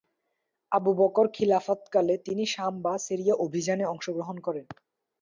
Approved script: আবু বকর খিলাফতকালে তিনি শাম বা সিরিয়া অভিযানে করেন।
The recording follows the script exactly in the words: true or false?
false